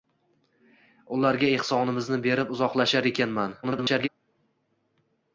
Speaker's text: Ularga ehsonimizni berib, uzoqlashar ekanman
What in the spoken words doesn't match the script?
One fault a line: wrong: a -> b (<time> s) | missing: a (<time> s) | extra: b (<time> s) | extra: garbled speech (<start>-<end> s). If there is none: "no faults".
extra: garbled speech (3.6-4.1 s)